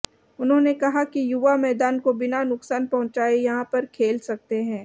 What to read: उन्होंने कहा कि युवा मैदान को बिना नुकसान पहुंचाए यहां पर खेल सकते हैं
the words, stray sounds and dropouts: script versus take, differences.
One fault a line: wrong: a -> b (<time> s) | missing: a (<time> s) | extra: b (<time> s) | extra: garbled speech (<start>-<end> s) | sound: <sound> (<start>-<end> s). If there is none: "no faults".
no faults